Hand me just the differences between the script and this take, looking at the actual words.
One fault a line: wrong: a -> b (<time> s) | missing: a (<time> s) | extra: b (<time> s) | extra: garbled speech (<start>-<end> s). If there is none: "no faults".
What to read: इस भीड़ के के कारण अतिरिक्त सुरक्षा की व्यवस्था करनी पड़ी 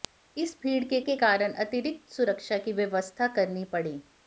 no faults